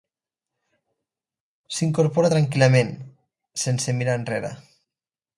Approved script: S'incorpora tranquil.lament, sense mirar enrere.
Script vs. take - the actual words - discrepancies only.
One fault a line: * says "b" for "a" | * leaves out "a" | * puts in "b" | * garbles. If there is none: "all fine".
all fine